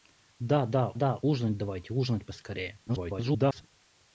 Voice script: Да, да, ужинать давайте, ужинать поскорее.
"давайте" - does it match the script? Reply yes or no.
yes